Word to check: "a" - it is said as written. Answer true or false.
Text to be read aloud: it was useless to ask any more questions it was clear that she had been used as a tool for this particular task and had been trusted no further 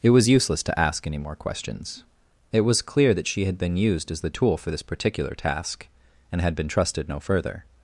false